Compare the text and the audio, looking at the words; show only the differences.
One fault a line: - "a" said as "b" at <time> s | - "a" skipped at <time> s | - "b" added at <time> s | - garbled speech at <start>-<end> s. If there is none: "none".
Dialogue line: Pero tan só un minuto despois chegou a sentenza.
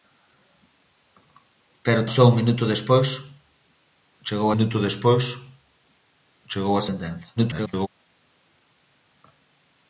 - "tan" skipped at 2.1 s
- "minuto despois chegou" added at 4.5 s
- garbled speech at 7.4-7.9 s